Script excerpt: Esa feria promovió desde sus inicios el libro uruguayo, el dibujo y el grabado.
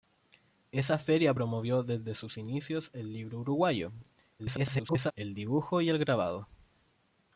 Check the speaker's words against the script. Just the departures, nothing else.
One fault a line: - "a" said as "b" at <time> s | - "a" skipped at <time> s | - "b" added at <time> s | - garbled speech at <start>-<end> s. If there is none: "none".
- garbled speech at 4.4-5.1 s